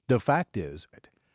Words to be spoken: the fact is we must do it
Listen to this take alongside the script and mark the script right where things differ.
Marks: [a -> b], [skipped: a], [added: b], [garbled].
the fact is [skipped: we must do] it